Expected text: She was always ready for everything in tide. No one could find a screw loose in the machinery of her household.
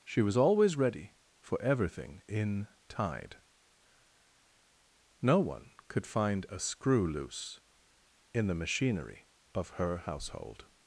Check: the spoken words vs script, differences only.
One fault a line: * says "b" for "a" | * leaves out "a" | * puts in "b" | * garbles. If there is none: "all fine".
all fine